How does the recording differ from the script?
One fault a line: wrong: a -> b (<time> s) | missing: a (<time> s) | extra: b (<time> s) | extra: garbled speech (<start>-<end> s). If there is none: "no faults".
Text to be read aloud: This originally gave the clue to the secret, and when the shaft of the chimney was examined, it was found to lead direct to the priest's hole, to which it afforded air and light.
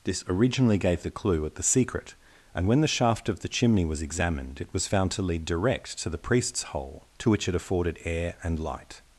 wrong: to -> at (1.5 s)